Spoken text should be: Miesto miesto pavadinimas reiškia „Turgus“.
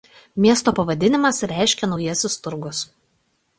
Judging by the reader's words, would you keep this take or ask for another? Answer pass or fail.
fail